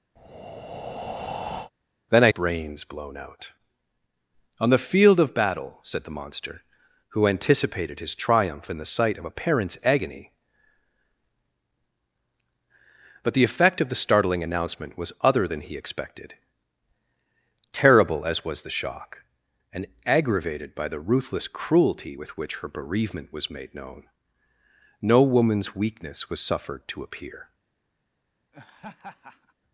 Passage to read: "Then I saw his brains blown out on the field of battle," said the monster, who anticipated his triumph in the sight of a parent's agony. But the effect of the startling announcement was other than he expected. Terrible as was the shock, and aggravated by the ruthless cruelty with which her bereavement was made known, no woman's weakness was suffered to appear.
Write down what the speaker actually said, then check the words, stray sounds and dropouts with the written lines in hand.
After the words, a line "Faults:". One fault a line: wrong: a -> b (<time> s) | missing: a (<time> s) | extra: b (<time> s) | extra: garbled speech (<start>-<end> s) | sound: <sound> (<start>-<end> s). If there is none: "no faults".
"Then I brains blown out on the field of battle," said the monster, who anticipated his triumph in the sight of a parent's agony. But the effect of the startling announcement was other than he expected. Terrible as was the shock, and aggravated by the ruthless cruelty with which her bereavement was made known, no woman's weakness was suffered to appear.
Faults:
sound: breath (0.2-1.7 s)
missing: saw his (2.3 s)
sound: laugh (28.5-29.5 s)